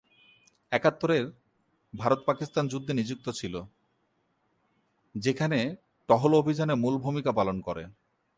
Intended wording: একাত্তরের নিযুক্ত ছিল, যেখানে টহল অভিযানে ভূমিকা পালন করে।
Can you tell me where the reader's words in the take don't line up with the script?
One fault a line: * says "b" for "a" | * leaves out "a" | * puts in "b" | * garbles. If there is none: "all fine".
* puts in "ভারত পাকিস্তান যুদ্ধে"
* puts in "মূল"